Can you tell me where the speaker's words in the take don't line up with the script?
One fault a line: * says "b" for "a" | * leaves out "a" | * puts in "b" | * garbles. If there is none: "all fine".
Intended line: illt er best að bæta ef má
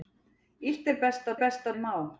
* says "best" for "bæta"